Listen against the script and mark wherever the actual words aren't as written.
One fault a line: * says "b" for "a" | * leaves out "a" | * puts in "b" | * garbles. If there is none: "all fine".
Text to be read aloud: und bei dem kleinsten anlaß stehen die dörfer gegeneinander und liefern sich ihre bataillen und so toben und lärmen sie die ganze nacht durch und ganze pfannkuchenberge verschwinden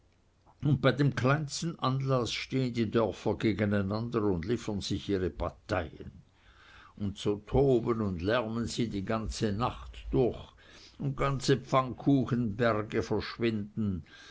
all fine